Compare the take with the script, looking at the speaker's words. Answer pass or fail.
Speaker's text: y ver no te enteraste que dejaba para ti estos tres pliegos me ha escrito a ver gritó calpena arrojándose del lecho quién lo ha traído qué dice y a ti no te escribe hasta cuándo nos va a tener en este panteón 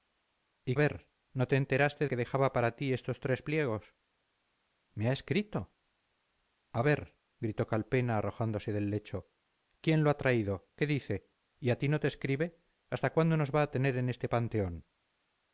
pass